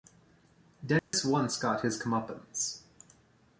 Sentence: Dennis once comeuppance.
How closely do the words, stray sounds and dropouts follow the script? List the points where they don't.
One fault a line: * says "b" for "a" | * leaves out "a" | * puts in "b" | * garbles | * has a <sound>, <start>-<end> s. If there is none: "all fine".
* has a dropout, 1.0-1.1 s
* puts in "got his"